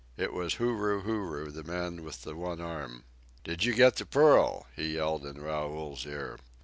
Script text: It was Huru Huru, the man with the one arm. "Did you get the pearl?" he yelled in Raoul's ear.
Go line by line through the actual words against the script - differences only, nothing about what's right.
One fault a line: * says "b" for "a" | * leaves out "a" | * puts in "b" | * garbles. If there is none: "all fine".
all fine